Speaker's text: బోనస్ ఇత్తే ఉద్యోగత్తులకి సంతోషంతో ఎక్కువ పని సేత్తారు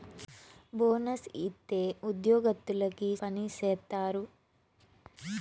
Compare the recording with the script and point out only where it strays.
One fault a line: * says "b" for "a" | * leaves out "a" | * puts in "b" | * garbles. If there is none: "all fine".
* leaves out "సంతోషంతో ఎక్కువ"